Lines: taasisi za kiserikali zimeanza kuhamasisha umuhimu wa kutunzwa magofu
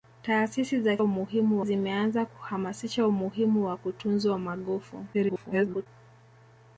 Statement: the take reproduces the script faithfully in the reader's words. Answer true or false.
false